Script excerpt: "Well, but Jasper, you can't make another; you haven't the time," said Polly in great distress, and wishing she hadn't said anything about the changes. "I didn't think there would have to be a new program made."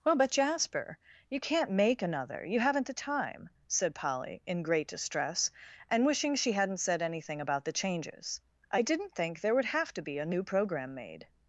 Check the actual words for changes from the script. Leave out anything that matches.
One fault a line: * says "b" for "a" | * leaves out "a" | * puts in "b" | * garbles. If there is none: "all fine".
all fine